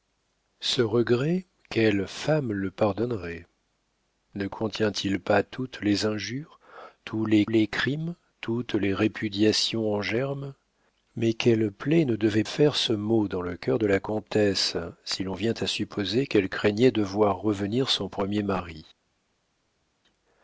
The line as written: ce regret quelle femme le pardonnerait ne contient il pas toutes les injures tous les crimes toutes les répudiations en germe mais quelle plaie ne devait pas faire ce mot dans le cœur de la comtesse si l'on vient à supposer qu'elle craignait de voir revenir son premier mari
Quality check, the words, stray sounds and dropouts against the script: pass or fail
fail